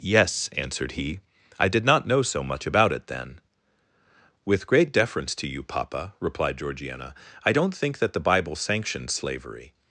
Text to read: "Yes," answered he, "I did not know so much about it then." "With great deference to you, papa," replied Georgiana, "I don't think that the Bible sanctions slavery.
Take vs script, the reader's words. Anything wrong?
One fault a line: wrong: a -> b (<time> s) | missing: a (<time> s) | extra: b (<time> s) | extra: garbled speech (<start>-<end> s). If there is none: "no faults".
no faults